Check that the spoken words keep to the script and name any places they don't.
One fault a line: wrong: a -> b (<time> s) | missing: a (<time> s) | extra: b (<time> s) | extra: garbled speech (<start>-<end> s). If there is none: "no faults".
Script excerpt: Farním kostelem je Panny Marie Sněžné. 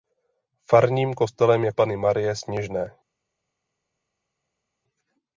no faults